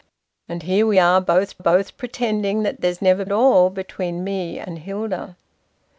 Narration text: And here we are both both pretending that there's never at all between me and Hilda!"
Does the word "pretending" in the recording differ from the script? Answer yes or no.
no